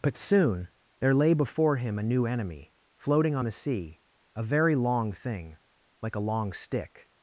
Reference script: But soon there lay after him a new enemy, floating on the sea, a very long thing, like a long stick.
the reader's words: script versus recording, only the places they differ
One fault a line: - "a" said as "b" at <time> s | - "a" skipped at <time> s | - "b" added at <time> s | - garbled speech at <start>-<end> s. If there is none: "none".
- "after" said as "before" at 1.3 s